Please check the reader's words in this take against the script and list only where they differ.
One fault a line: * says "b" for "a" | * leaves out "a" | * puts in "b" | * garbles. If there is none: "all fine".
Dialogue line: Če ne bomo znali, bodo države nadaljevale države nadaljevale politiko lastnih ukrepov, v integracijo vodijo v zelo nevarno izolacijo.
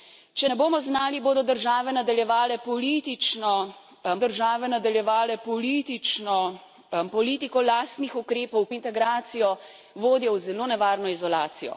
all fine